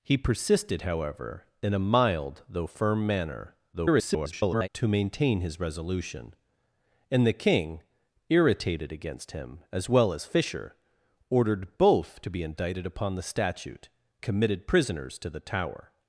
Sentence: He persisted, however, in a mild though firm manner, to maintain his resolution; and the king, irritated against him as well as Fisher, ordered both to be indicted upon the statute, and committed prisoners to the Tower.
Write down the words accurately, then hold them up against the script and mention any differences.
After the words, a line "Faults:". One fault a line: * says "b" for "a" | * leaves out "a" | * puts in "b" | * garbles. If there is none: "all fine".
He persisted, however, in a mild though firm manner, [garbled] to maintain his resolution; and the king, irritated against him as well as Fisher, ordered both to be indicted upon the statute, committed prisoners to the Tower.
Faults:
* garbles
* leaves out "and"